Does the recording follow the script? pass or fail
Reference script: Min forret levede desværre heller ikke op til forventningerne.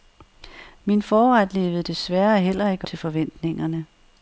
fail